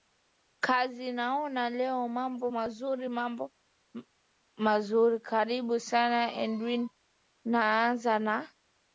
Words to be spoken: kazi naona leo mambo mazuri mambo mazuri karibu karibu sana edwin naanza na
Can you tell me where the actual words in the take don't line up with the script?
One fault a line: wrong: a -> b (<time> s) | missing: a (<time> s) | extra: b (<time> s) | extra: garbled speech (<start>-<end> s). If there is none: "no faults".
missing: karibu (5.8 s)